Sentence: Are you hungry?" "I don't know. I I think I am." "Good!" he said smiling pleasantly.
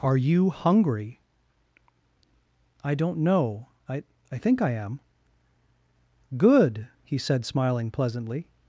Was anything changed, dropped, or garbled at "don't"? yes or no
no